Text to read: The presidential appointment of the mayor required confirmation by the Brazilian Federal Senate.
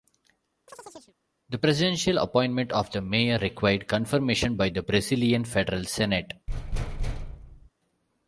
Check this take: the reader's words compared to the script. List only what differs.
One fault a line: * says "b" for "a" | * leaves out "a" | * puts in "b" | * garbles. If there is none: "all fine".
all fine